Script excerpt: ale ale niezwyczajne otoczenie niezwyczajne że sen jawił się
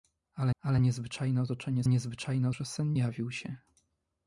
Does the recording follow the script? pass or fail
pass